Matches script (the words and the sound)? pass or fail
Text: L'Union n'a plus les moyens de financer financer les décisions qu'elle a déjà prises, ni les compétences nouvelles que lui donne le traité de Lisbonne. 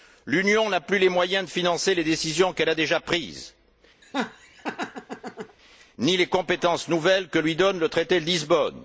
fail